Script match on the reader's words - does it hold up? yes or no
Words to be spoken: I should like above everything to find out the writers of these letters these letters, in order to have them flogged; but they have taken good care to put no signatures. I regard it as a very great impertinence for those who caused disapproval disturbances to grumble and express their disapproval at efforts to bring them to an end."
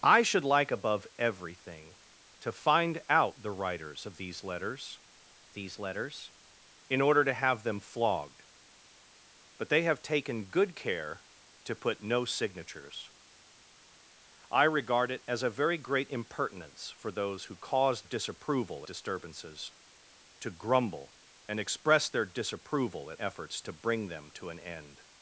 yes